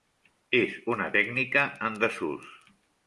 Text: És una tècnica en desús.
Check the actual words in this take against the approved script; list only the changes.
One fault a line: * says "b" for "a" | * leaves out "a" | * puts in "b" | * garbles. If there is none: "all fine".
all fine